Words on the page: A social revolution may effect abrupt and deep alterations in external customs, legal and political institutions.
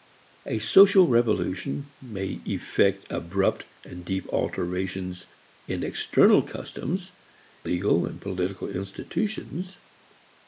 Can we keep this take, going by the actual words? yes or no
yes